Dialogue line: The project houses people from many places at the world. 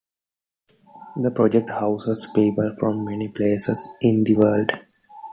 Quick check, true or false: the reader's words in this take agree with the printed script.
false